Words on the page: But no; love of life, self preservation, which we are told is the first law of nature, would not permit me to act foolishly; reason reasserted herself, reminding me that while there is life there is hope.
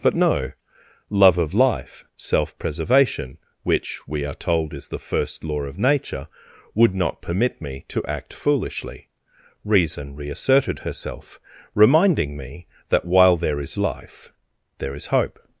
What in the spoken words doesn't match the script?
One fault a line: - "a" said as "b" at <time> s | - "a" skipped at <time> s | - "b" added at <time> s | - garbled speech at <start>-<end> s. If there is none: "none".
none